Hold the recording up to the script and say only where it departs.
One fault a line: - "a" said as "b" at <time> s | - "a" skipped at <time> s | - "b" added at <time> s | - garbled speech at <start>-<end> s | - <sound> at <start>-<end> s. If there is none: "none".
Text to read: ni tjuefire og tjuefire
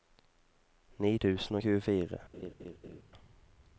- "tjuefire" said as "tusen" at 1.2 s
- laugh at 2.3-3.0 s